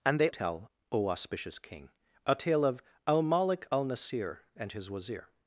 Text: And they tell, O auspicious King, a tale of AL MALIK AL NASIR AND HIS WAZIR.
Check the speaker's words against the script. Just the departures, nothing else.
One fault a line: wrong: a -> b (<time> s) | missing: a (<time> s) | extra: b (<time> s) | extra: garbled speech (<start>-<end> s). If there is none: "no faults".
no faults